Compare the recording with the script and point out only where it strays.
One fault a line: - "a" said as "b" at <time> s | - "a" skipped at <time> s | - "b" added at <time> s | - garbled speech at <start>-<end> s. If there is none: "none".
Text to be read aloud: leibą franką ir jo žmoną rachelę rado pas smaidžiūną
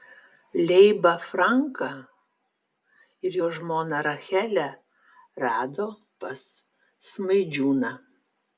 none